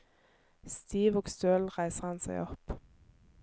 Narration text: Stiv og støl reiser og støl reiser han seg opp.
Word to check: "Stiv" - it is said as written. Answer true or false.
true